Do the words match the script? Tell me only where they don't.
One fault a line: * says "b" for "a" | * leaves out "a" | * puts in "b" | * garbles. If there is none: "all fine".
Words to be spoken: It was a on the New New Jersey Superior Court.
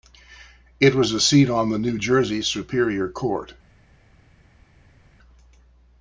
* puts in "seat"
* leaves out "New"